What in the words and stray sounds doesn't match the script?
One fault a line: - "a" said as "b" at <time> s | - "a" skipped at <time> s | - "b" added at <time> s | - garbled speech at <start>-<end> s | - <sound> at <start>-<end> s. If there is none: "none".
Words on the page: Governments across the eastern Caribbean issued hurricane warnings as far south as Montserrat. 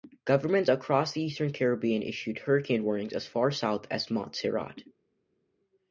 none